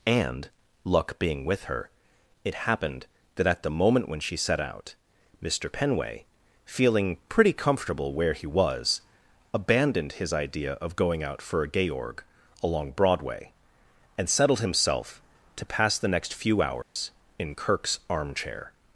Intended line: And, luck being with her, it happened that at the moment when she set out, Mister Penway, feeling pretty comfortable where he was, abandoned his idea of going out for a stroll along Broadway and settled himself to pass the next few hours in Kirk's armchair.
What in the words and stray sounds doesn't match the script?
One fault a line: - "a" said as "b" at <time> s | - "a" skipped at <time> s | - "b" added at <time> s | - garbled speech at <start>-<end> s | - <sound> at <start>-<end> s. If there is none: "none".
- "stroll" said as "georg" at 11.9 s
- dropout at 16.8-17.0 s